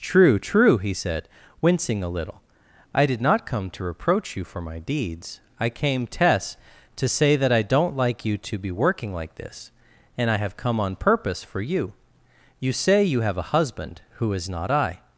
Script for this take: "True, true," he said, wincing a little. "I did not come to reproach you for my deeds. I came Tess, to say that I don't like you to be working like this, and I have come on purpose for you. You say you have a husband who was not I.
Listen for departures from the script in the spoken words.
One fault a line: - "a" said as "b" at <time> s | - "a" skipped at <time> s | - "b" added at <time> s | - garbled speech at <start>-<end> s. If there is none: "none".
- "was" said as "is" at 14.3 s